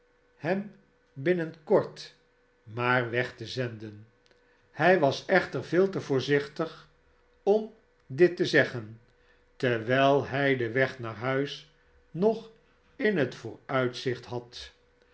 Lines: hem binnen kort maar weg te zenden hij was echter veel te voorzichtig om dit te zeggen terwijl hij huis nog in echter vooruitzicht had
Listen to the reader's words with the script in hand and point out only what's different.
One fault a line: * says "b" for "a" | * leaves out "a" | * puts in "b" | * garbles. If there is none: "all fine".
* puts in "den weg naar"
* says "het" for "echter"